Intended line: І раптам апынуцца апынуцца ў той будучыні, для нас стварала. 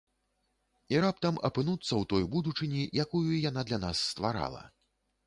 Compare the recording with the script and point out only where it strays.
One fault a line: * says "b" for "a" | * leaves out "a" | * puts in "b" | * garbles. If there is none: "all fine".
* leaves out "апынуцца"
* puts in "якую яна"